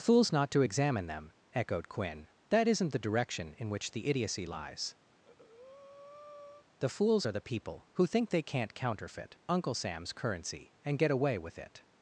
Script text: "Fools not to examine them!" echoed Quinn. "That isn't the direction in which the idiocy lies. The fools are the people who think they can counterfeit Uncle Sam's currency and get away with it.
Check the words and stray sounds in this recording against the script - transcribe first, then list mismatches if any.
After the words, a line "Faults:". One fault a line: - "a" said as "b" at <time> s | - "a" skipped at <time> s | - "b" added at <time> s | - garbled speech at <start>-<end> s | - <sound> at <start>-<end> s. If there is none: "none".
"Fools not to examine them!" echoed Quinn. "That isn't the direction in which the idiocy lies. The fools are the people who think they can't counterfeit Uncle Sam's currency and get away with it.
Faults:
- breath at 5.1-6.7 s
- "can" said as "can't" at 8.4 s